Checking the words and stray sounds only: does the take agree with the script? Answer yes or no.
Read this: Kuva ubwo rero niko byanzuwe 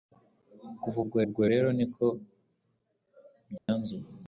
no